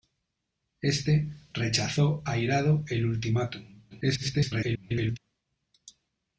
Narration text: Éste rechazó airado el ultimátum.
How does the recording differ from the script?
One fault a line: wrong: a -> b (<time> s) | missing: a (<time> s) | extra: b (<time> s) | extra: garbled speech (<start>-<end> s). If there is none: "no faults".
extra: garbled speech (3.9-5.2 s)